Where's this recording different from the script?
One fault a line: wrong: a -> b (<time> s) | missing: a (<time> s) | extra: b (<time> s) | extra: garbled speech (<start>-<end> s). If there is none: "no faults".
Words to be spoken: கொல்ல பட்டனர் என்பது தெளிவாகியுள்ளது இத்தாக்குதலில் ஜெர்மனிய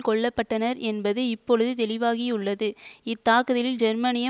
extra: இப்பொழுது (1.3 s)